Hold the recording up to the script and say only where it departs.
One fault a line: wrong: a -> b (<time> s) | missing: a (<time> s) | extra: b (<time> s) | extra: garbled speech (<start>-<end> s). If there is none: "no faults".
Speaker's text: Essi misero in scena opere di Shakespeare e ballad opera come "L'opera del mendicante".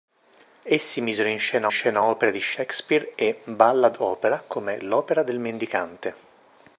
extra: scena (1.7 s)